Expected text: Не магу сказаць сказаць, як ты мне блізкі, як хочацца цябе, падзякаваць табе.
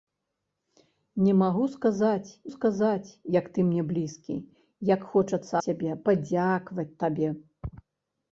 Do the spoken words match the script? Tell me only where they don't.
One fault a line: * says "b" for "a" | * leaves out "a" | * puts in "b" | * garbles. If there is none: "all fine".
all fine